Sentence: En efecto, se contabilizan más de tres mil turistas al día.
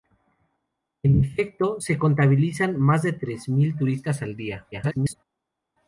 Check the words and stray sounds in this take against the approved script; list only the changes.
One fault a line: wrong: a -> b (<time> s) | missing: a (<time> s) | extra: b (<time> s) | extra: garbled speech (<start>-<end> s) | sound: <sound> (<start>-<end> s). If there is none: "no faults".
extra: garbled speech (4.7-5.2 s)